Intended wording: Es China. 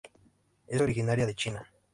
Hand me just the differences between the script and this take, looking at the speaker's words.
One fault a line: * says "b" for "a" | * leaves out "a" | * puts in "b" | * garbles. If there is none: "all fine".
* puts in "originaria de"